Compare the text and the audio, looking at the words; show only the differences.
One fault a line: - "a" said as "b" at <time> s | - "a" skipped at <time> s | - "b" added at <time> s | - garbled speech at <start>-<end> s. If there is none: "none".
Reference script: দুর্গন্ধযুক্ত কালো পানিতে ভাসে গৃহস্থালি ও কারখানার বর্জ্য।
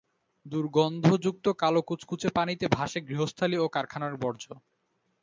- "কুচকুচে" added at 1.8 s